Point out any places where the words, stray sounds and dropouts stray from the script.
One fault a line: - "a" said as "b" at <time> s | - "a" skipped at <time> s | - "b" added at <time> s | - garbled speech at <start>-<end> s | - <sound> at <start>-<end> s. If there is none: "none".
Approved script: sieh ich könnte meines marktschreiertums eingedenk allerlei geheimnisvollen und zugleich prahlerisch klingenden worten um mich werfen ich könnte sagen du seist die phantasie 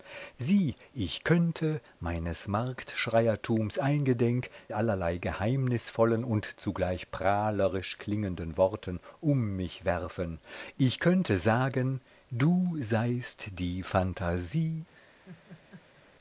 - laugh at 14.9-16.1 s